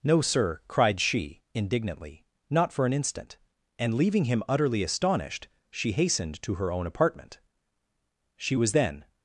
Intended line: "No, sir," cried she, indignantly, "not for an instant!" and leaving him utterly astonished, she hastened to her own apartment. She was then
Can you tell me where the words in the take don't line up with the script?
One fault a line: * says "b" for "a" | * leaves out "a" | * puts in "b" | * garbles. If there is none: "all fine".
all fine